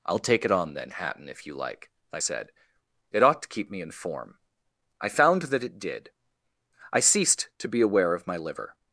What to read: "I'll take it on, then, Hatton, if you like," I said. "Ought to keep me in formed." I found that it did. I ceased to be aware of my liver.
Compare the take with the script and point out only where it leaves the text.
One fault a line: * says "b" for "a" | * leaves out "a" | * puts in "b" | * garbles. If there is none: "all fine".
* puts in "It"
* says "form" for "formed"